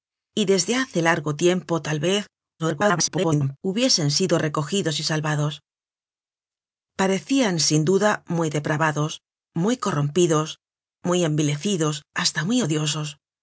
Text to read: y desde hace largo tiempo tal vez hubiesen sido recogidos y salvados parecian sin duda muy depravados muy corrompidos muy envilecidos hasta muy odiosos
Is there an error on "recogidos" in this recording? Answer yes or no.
no